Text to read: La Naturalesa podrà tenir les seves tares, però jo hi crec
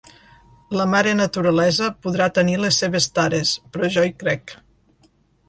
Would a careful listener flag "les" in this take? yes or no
no